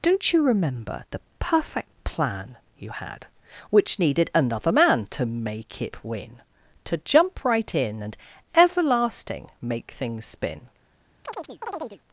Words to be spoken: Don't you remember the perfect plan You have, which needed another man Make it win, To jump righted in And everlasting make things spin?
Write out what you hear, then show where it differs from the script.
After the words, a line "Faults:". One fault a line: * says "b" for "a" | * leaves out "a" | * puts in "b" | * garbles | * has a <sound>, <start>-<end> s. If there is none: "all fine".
Don't you remember the perfect plan You had, which needed another man To make it win, To jump right in And everlasting make things spin?
Faults:
* says "had" for "have"
* puts in "To"
* says "right" for "righted"
* has a chirp, 11.2-12.0 s